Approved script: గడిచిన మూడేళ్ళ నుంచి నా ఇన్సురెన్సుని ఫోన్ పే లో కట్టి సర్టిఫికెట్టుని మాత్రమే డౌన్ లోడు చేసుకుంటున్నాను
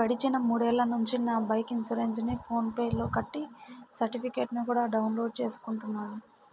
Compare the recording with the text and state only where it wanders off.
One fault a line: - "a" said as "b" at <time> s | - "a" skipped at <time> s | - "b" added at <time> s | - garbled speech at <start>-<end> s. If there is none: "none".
- "బైకు" added at 1.5 s
- "మాత్రమే" said as "కూడా" at 4.7 s